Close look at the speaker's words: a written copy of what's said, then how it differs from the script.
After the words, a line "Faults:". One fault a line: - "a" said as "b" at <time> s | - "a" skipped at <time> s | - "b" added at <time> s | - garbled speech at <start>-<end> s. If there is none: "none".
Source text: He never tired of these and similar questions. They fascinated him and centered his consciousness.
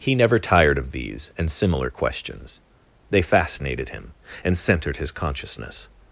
He never tired of these and similar questions. They fascinated him and centered his consciousness.
Faults:
none